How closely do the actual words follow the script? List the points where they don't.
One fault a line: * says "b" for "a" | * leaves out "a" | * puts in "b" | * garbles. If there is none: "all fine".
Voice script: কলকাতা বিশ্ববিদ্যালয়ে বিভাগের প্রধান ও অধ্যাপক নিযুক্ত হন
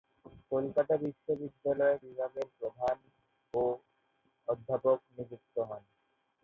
all fine